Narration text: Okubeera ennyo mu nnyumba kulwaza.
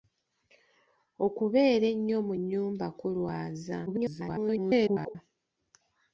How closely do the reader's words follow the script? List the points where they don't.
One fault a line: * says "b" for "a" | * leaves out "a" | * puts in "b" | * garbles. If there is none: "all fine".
* garbles